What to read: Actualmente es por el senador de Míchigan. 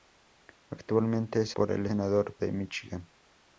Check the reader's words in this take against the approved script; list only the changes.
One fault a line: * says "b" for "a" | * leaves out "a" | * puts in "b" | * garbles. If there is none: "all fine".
all fine